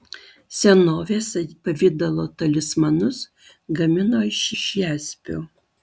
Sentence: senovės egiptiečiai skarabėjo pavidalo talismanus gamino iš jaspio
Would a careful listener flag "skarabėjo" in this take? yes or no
yes